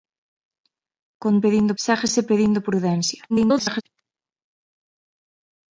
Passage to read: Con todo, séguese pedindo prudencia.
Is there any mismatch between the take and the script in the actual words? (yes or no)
yes